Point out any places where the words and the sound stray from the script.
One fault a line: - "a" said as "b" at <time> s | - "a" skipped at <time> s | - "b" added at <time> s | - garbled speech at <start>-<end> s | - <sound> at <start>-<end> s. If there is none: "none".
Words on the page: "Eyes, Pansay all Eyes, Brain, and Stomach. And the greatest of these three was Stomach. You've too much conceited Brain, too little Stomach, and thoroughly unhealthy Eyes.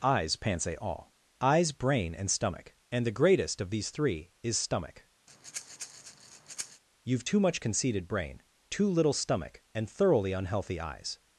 - "was" said as "is" at 4.4 s
- breath at 5.3-6.8 s